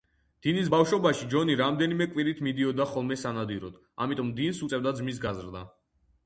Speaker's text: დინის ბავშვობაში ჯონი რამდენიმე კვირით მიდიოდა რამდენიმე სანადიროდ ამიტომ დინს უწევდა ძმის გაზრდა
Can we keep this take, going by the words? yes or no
no